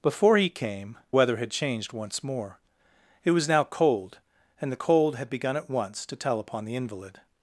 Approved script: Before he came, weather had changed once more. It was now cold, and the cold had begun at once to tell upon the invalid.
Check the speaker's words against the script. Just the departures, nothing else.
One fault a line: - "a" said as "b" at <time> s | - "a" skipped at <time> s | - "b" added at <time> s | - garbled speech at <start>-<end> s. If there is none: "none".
none